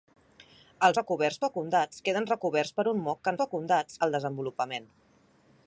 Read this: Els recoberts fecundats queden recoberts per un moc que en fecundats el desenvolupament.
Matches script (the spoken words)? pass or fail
pass